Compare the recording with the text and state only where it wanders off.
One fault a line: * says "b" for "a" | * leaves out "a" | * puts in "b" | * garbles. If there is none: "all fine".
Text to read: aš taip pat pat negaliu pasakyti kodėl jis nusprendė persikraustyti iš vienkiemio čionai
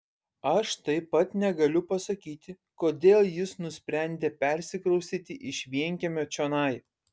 * leaves out "pat"